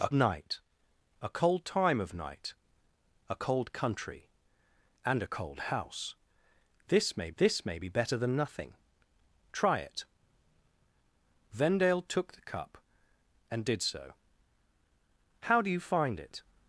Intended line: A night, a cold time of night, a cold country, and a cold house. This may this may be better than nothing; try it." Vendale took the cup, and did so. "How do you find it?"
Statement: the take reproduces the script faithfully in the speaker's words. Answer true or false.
true